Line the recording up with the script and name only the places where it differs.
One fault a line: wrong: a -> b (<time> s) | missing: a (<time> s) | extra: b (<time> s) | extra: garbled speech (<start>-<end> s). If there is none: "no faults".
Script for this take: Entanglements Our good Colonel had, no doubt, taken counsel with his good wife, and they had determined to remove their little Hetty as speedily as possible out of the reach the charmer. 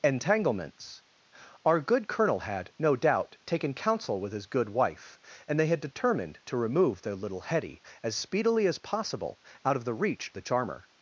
no faults